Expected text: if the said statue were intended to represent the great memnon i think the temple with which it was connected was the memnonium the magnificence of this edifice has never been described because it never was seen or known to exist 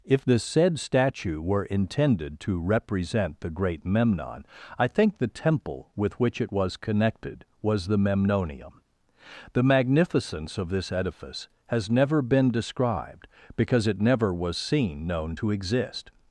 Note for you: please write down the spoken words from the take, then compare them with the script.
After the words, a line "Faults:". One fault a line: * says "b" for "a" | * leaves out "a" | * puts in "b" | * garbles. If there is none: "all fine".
if the said statue were intended to represent the great memnon i think the temple with which it was connected was the memnonium the magnificence of this edifice has never been described because it never was seen known to exist
Faults:
* leaves out "or"